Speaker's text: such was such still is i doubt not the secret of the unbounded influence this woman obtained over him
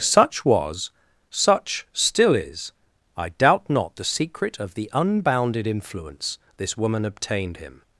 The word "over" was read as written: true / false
false